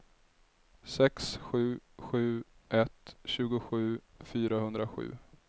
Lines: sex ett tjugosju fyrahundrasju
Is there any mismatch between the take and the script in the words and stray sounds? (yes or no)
yes